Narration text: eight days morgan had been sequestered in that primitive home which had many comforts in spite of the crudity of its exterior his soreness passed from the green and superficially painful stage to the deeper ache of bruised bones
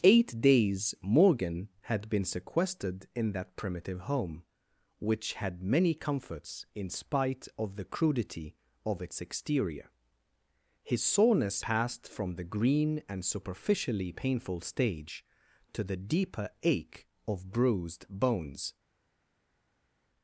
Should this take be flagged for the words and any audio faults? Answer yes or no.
no